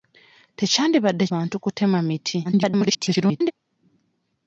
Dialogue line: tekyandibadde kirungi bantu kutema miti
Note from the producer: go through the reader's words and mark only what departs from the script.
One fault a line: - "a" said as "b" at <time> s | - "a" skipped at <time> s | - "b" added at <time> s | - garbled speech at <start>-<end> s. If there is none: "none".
- "kirungi" skipped at 1.2 s
- garbled speech at 2.4-3.5 s